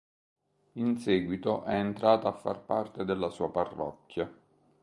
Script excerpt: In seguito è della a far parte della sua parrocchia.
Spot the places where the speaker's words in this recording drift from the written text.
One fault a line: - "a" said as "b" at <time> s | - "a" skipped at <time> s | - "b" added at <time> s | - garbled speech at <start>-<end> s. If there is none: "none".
- "della" said as "entrata" at 1.7 s